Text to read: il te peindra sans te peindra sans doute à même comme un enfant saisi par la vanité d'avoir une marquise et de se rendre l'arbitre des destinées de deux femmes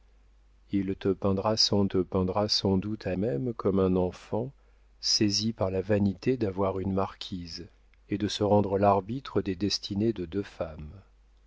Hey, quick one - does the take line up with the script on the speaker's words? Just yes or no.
yes